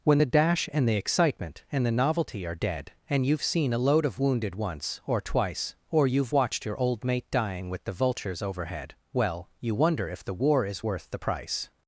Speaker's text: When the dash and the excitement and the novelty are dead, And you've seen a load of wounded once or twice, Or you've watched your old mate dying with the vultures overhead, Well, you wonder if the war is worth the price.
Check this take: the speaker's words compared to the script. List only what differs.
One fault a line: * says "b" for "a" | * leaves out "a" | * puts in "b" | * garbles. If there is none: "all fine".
all fine